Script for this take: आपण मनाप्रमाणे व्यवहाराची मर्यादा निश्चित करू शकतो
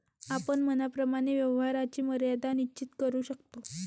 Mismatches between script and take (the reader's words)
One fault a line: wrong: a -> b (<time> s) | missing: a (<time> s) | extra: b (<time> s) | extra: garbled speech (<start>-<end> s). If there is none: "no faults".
no faults